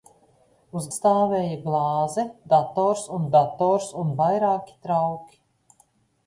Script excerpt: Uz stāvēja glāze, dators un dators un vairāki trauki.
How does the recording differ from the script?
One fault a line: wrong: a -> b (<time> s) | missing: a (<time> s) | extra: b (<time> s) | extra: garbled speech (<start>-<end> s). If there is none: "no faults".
no faults